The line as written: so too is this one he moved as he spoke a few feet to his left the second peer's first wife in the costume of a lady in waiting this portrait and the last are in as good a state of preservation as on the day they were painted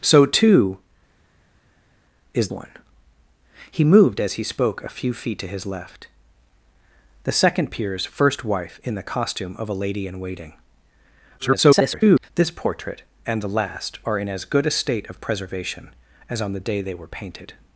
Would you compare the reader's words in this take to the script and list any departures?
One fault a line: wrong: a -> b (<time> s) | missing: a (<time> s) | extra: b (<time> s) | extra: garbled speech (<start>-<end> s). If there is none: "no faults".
missing: this (2.5 s)
extra: garbled speech (11.4-12.3 s)